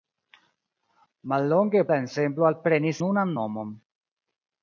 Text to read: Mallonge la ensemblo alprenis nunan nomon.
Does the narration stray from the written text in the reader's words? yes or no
no